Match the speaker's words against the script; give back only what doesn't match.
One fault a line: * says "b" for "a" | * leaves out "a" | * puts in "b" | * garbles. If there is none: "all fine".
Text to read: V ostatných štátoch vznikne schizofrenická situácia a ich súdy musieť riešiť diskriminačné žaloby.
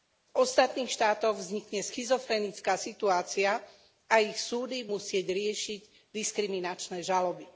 all fine